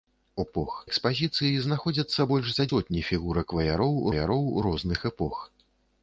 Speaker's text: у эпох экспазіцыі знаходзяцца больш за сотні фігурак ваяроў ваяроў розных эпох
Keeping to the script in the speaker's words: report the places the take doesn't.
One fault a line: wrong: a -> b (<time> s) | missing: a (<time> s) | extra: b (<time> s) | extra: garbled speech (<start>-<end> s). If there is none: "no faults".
no faults